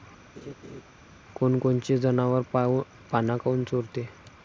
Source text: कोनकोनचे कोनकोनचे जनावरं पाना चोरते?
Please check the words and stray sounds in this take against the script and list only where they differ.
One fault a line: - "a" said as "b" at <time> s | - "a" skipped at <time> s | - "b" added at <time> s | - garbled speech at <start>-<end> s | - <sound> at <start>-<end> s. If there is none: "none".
- laugh at 0.3-0.8 s
- "कोनकोनचे" skipped at 2.0 s
- "काऊन" added at 3.4 s